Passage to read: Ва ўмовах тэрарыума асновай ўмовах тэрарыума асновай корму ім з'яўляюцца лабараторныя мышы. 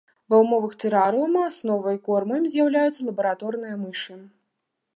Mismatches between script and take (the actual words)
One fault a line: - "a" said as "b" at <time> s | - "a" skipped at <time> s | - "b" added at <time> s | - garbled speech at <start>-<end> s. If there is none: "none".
- "ўмовах тэрарыума асновай" skipped at 2.0 s